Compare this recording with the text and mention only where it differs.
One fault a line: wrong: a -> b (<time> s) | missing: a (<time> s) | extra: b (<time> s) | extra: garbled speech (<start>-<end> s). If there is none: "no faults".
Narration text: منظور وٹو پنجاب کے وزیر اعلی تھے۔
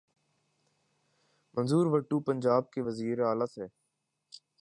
no faults